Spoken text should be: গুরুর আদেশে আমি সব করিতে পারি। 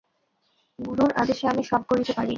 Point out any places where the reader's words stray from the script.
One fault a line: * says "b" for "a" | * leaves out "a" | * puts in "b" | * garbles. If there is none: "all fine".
all fine